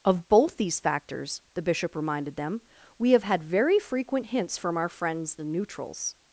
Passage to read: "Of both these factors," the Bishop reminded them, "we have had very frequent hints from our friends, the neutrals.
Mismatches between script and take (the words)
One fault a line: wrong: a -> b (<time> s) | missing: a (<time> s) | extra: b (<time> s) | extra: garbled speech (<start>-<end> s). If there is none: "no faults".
no faults